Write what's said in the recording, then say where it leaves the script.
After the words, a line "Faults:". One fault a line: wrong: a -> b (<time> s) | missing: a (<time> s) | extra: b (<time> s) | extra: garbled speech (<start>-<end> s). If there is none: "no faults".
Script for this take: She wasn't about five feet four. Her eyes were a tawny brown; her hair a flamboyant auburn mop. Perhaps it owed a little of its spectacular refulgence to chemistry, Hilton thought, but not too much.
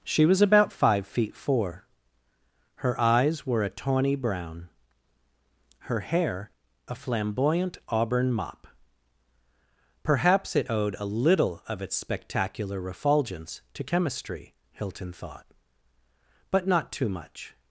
She was about five feet four. Her eyes were a tawny brown; her hair a flamboyant auburn mop. Perhaps it owed a little of its spectacular refulgence to chemistry, Hilton thought, but not too much.
Faults:
wrong: wasn't -> was (0.2 s)